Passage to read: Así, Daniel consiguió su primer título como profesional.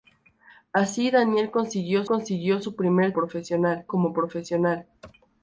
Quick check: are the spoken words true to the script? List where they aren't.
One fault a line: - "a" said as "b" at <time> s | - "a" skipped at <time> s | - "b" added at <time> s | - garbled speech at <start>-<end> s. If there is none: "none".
- "consiguió" added at 2.1 s
- "título" said as "profesional" at 3.1 s